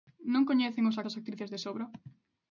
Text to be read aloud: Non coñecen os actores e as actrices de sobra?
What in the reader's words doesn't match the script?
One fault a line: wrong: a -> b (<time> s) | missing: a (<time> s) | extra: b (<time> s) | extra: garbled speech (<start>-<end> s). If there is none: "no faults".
missing: actores (1.0 s)